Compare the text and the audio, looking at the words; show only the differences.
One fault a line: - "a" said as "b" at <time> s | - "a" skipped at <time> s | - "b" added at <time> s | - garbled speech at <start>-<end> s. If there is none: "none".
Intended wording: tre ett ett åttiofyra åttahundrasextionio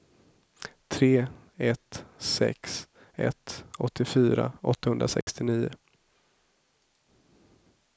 - "sex" added at 2.2 s